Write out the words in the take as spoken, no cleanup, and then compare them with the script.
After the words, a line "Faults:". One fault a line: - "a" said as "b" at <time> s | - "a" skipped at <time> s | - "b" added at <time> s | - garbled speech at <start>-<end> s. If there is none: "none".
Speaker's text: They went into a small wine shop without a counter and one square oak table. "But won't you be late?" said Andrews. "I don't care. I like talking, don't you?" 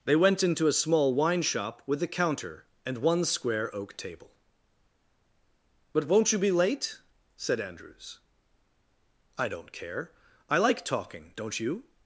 They went into a small wine shop with a counter and one square oak table. "But won't you be late?" said Andrews. "I don't care. I like talking, don't you?"
Faults:
- "without" said as "with" at 1.9 s